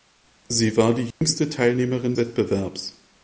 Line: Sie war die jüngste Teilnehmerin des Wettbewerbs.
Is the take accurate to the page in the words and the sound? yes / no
no